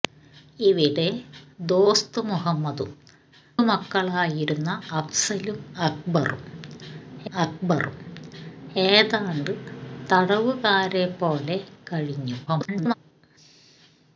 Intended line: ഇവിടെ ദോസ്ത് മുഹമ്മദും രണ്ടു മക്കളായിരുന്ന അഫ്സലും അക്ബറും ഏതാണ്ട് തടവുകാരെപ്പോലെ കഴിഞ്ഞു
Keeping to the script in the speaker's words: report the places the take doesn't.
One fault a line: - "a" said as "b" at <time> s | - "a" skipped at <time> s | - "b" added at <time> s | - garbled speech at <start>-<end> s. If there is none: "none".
- "രണ്ടു" skipped at 2.9 s
- "അക്ബറും" added at 7.3 s
- garbled speech at 12.5-12.9 s